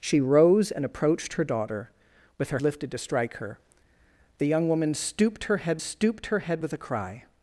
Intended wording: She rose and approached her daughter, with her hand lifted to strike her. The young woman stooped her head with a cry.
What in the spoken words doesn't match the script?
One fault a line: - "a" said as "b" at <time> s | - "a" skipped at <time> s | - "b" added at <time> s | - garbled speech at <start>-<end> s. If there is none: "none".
- "hand" skipped at 2.6 s
- "stooped her head" added at 5.8 s